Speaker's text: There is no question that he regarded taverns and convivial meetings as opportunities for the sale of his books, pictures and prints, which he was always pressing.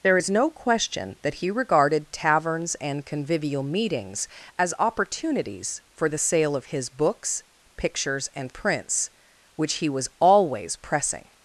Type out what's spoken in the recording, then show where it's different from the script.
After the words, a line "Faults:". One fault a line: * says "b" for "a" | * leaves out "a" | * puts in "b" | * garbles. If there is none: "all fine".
There is no question that he regarded taverns and convivial meetings as opportunities for the sale of his books, pictures and prints, which he was always pressing.
Faults:
all fine